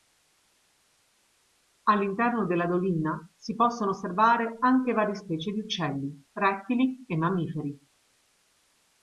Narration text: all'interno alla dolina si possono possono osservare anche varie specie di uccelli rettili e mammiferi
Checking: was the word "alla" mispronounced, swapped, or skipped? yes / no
yes